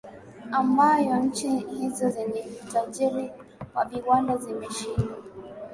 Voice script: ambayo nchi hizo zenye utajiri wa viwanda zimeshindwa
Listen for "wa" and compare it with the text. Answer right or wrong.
right